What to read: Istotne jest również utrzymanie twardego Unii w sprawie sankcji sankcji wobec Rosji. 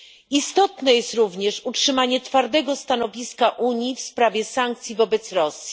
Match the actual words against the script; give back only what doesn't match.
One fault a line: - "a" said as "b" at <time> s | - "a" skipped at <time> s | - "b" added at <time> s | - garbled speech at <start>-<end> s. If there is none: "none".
- "stanowiska" added at 2.8 s
- "sankcji" skipped at 5.0 s